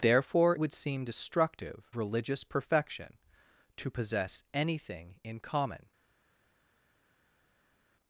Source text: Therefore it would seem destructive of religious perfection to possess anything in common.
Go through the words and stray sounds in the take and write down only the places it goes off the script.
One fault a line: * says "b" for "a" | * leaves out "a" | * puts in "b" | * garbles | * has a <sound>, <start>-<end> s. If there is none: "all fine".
* leaves out "it"
* leaves out "of"